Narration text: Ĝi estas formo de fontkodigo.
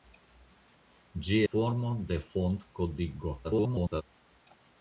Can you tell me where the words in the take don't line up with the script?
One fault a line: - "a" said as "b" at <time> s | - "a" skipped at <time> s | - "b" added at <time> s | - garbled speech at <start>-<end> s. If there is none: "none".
- "estas" skipped at 1.4 s
- garbled speech at 3.4-4.0 s